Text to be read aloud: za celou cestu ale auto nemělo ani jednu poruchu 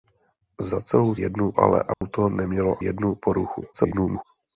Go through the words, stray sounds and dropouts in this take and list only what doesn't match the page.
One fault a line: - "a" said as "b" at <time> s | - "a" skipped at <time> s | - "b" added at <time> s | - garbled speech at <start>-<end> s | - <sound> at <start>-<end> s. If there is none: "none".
- "cestu" said as "jednu" at 1.2 s
- dropout at 1.9-2.0 s
- "ani" skipped at 2.8 s
- garbled speech at 3.7-4.2 s